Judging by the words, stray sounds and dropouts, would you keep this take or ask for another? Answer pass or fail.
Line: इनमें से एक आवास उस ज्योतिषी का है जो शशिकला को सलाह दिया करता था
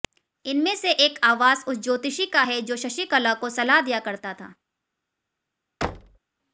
fail